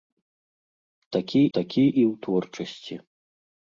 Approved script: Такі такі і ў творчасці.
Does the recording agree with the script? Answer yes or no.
yes